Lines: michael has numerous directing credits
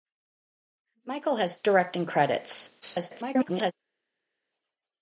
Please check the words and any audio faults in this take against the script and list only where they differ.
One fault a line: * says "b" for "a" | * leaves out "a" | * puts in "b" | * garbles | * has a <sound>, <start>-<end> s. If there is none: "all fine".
* leaves out "numerous"
* garbles